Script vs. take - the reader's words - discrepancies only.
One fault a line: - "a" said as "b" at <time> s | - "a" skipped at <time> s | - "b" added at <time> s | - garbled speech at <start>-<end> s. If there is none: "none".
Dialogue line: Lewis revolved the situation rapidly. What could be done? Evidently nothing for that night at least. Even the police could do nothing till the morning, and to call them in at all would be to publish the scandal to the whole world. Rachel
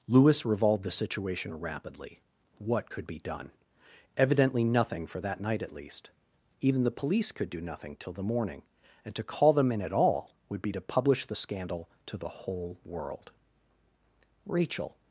none